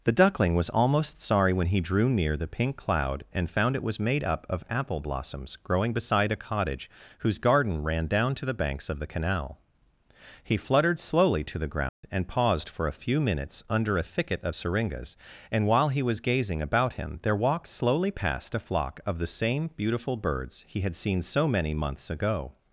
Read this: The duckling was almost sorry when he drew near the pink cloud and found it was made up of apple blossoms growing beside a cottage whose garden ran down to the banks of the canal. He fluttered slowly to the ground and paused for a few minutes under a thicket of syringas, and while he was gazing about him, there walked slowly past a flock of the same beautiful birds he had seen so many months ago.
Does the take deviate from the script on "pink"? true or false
false